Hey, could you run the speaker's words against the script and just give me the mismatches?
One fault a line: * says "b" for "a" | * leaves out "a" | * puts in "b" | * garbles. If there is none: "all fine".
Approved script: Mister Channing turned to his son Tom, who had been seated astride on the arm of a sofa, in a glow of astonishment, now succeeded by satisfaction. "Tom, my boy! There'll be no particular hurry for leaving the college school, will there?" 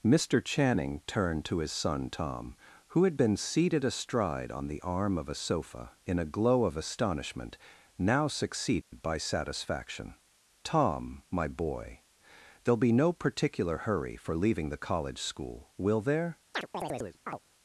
all fine